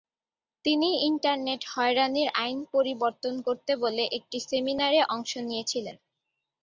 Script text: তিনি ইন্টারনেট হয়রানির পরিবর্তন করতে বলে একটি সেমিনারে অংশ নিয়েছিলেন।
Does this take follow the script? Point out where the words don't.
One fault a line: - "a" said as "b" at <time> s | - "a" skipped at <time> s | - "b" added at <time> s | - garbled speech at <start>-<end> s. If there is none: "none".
- "আইন" added at 2.4 s